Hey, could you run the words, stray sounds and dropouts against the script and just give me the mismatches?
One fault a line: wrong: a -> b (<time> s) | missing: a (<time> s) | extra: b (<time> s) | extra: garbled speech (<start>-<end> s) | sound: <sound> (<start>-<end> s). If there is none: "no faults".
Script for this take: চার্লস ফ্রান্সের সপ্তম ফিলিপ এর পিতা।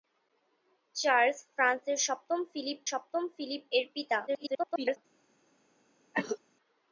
extra: সপ্তম ফিলিপ (2.9 s)
extra: garbled speech (4.3-5.0 s)
sound: cough (6.1-6.4 s)